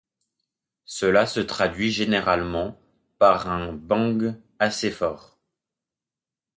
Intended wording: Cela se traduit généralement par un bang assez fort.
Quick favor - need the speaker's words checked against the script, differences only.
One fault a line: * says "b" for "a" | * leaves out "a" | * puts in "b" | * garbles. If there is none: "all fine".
all fine